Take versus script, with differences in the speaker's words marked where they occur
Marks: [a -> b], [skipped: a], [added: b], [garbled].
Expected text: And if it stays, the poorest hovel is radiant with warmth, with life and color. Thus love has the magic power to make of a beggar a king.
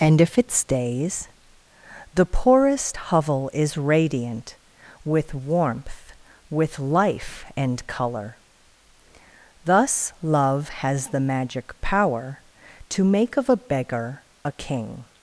And if it stays, the poorest hovel is radiant with warmth, with life and color. Thus love has the magic power to make of a beggar a king.